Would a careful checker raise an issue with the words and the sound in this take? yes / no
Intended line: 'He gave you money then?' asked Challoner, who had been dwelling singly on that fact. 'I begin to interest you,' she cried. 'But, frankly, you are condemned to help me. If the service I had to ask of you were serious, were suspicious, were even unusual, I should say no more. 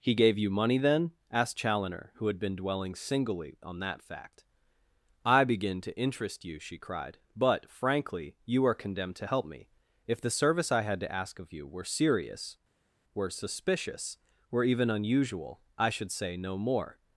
no